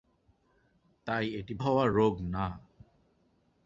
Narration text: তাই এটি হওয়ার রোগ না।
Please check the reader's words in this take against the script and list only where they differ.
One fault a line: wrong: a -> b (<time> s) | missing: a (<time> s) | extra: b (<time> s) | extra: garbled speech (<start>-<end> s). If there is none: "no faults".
no faults